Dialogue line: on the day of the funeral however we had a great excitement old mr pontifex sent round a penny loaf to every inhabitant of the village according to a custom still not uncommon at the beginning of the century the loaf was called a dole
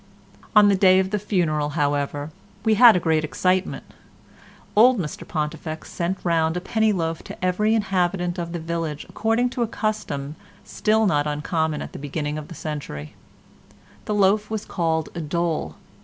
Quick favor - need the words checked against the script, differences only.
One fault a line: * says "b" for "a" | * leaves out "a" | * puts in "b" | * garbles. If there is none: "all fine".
all fine